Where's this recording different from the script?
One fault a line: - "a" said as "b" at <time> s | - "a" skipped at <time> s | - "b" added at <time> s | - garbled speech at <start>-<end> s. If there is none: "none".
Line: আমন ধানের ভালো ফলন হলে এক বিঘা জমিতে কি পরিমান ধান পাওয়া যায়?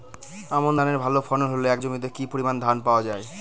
- "বিঘা" skipped at 1.8 s